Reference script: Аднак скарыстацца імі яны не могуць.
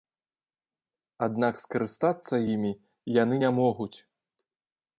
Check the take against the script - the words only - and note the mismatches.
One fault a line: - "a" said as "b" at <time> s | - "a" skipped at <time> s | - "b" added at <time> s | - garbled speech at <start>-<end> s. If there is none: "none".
none